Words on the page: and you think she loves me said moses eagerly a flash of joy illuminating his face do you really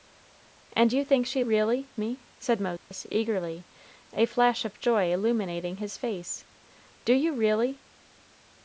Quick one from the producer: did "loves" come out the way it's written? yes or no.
no